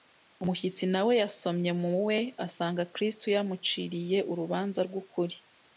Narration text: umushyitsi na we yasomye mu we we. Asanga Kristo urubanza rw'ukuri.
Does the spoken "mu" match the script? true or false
true